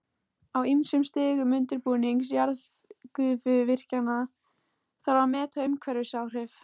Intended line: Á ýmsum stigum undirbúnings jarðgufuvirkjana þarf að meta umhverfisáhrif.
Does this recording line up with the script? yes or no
yes